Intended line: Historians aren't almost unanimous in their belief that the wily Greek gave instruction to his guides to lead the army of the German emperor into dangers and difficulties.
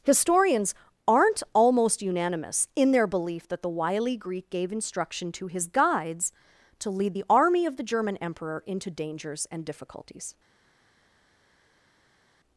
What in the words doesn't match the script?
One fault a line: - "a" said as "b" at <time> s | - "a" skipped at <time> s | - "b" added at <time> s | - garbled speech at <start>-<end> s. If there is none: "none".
none